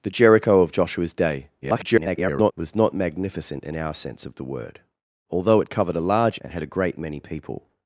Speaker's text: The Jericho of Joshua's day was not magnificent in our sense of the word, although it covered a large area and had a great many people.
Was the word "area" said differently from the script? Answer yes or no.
yes